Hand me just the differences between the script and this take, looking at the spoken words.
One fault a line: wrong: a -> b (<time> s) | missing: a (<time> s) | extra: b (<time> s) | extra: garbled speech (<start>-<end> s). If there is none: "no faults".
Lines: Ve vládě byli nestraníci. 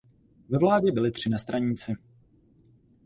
extra: tři (1.1 s)